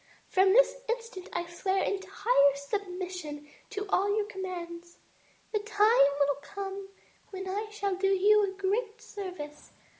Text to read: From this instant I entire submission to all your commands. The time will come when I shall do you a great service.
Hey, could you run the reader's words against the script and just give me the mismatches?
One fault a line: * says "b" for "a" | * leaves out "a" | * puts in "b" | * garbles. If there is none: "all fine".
* puts in "swear"